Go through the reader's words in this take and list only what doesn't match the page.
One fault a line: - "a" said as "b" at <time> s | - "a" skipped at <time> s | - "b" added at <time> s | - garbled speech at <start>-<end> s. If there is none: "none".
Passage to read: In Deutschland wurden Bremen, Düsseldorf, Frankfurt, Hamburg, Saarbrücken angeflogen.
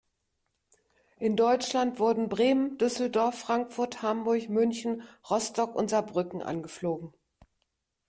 - "München Rostock und" added at 4.5 s